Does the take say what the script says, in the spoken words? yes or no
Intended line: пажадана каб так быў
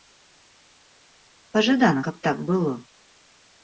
no